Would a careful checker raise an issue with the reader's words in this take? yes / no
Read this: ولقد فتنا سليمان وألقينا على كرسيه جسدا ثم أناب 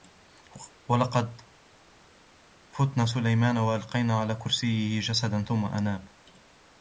no